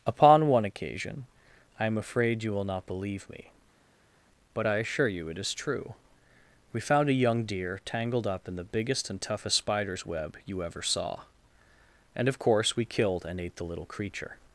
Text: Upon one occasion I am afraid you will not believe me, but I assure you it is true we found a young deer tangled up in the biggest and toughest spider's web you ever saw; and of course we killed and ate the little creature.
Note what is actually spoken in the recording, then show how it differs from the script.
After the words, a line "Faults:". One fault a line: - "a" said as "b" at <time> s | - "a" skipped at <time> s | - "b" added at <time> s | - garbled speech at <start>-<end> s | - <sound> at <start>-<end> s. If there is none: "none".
Upon one occasion I am afraid you will not believe me, but I assure you it is true we found a young deer tangled up in the biggest and toughest spider's web you ever saw; and of course we killed and ate the little creature.
Faults:
none